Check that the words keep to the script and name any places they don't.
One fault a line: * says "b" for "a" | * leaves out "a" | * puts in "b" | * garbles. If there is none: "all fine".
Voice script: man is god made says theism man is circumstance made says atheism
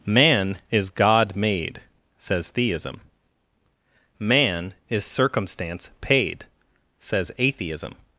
* says "paid" for "made"